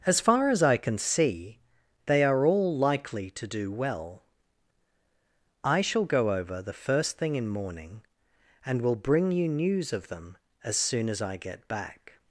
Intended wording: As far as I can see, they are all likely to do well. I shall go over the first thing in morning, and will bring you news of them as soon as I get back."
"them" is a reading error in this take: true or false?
false